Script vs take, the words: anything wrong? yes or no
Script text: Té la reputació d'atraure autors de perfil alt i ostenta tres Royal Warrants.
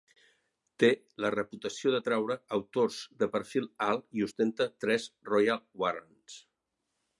no